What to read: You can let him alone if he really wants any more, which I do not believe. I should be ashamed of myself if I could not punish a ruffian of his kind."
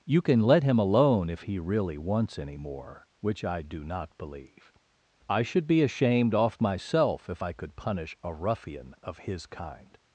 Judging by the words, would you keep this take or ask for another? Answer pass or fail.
fail